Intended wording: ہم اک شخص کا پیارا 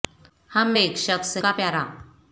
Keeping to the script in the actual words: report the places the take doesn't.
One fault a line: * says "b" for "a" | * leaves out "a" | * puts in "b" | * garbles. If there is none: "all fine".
all fine